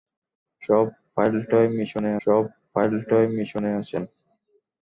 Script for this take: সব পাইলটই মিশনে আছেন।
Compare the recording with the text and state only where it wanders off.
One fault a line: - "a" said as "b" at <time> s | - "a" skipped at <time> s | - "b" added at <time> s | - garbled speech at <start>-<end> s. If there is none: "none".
- "সব পাইলটই মিশনে" added at 2.2 s